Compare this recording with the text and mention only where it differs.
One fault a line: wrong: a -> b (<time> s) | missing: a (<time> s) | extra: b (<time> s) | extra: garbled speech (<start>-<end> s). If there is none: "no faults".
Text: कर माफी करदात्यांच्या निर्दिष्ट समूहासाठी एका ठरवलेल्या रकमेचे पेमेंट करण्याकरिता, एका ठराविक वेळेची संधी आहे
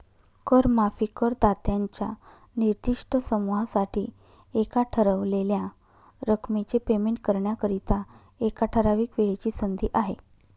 no faults